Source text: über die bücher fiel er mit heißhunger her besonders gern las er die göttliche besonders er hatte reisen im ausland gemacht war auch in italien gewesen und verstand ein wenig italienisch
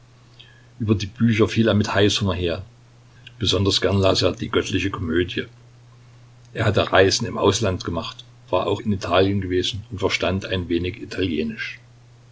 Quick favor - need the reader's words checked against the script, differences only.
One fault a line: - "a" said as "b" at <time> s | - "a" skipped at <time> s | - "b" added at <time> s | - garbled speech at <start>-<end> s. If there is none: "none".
- "besonders" said as "komödie" at 4.9 s